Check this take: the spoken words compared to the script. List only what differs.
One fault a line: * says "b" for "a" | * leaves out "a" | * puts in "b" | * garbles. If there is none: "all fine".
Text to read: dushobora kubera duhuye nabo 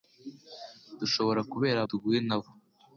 all fine